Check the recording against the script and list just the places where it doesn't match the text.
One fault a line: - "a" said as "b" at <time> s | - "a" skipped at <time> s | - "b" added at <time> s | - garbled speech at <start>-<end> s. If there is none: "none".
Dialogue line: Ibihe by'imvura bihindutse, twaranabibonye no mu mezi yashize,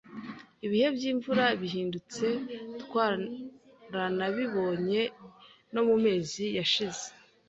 none